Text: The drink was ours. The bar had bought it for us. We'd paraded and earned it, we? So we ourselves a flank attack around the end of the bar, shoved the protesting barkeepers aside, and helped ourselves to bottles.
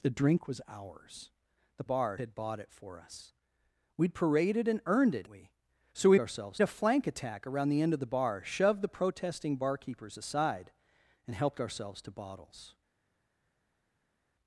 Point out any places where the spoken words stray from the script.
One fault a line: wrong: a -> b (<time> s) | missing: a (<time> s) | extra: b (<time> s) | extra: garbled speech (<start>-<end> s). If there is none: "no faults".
no faults